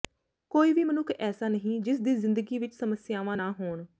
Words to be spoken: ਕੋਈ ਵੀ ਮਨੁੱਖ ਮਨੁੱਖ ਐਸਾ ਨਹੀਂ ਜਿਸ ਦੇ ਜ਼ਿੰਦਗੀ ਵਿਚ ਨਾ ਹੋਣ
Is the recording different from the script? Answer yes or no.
yes